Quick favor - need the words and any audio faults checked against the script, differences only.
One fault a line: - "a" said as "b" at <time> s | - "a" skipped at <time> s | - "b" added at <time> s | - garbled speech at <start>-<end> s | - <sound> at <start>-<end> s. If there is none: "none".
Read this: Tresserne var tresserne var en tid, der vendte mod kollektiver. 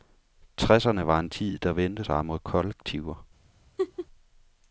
- "tresserne var" skipped at 1.2 s
- "sig" added at 2.0 s
- laugh at 3.8-4.1 s